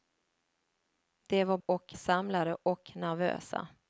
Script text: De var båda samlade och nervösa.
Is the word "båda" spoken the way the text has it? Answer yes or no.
no